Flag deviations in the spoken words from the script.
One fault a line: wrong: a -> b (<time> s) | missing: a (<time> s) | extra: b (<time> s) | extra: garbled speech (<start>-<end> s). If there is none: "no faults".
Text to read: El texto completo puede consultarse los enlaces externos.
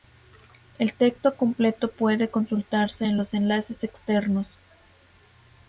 extra: en (3.0 s)